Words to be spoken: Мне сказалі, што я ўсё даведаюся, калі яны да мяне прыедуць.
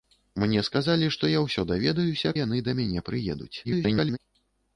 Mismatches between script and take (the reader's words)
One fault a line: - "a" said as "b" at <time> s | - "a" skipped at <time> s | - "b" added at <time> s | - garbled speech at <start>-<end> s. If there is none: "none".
- "калі" skipped at 2.3 s
- garbled speech at 3.6-4.2 s